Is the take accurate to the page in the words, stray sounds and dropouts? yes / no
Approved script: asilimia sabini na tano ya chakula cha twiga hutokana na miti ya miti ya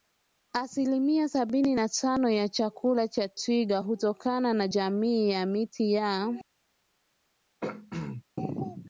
no